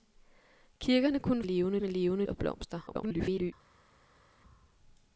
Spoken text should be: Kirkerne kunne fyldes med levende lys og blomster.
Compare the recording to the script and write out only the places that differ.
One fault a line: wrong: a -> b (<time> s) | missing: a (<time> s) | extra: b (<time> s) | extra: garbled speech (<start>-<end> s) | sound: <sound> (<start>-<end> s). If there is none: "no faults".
wrong: fyldes -> levende (1.4 s)
missing: lys (2.3 s)
extra: garbled speech (2.9-3.5 s)